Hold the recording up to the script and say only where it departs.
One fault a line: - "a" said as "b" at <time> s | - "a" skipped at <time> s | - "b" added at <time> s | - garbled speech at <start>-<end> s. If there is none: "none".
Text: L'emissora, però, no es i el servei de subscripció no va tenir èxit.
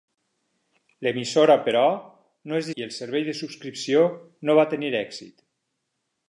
none